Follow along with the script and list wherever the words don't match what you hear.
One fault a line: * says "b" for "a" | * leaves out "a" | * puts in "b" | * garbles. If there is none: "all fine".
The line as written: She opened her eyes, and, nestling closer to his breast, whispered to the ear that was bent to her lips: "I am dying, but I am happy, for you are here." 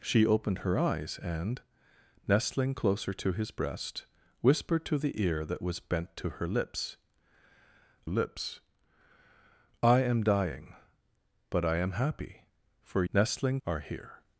* puts in "lips"
* says "nestling" for "you"